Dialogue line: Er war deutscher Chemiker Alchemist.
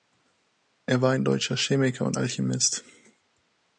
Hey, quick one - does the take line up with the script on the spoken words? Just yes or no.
no